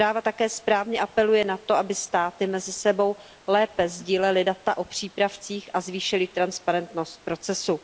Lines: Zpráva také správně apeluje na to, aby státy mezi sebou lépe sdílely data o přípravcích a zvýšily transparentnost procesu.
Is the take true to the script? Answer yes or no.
yes